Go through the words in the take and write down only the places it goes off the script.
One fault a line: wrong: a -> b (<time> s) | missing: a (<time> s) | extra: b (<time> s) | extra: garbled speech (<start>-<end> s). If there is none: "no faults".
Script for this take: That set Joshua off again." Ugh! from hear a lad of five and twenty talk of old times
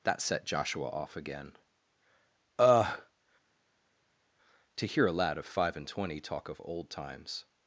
wrong: from -> to (4.8 s)